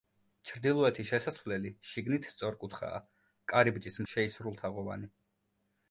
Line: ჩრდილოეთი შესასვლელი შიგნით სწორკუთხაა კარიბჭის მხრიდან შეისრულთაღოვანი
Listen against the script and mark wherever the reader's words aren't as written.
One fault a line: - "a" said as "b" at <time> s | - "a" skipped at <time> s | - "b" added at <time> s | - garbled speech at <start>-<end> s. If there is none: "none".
- "მხრიდან" skipped at 4.0 s